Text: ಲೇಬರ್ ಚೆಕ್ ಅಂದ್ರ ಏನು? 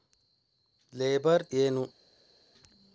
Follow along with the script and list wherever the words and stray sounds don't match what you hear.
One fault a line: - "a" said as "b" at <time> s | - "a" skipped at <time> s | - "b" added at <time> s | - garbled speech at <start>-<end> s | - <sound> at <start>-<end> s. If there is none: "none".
- "ಚೆಕ್ ಅಂದ್ರ" skipped at 1.4 s